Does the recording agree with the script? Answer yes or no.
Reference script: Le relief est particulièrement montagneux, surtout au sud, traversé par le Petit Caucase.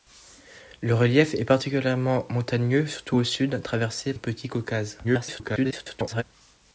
no